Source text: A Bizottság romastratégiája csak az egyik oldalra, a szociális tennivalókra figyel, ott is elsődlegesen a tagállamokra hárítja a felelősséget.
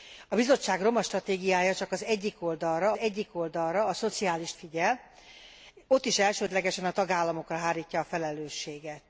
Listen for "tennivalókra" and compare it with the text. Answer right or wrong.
wrong